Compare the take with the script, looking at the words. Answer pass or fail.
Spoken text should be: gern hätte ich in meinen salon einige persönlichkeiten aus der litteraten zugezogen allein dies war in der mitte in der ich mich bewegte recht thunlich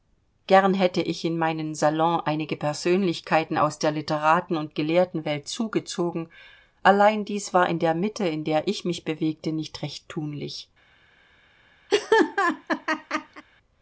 fail